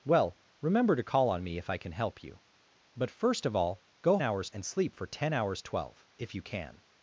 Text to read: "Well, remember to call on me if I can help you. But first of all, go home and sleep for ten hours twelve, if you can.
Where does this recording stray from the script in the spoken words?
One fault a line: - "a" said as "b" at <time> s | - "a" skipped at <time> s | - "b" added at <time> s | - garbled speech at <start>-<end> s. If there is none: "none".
- "home" said as "hours" at 4.2 s